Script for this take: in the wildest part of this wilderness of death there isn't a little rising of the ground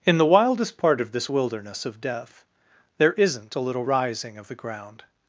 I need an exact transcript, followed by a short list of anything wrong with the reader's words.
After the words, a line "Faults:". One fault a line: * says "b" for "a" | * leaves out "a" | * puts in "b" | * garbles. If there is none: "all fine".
in the wildest part of this wilderness of death there isn't a little rising of the ground
Faults:
all fine